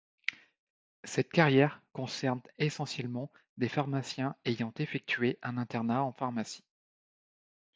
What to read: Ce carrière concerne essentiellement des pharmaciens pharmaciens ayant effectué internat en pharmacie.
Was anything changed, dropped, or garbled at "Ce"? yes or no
yes